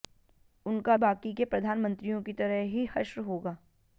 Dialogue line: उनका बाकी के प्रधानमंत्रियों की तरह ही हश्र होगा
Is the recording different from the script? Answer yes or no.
no